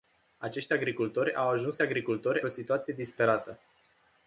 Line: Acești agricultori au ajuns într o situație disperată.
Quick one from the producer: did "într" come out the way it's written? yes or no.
no